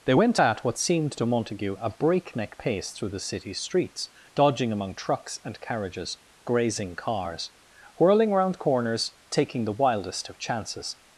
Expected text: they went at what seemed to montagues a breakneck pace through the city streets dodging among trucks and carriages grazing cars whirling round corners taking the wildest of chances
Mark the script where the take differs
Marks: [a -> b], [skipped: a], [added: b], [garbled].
they went at what seemed to [montagues -> montague] a breakneck pace through the city streets dodging among trucks and carriages grazing cars whirling round corners taking the wildest of chances